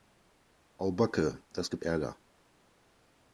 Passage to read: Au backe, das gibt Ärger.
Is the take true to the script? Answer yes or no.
yes